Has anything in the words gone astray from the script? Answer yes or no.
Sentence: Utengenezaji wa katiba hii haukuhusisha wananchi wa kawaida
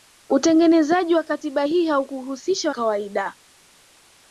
yes